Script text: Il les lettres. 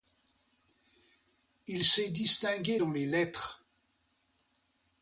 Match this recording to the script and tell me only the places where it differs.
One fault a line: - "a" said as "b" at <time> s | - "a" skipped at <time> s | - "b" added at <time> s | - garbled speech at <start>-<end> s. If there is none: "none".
- "s'est distingué dans" added at 1.8 s